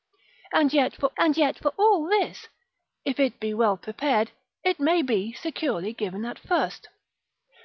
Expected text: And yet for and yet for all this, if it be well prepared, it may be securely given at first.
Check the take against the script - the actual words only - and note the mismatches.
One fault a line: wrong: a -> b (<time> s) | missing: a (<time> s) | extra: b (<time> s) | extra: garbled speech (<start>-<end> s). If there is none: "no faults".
no faults